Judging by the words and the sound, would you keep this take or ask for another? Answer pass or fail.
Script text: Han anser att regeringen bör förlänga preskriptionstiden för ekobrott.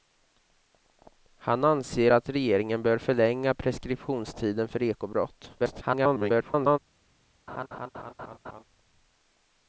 fail